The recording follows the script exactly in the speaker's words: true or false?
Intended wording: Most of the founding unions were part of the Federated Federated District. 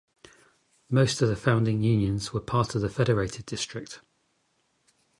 false